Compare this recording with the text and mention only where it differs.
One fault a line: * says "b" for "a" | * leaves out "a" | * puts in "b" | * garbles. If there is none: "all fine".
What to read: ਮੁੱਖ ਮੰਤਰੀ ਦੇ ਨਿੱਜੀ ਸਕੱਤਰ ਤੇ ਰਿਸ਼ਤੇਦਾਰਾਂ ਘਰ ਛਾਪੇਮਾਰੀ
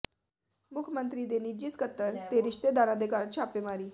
* puts in "ਦੇ"